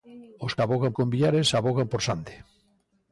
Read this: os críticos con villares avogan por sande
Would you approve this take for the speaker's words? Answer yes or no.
no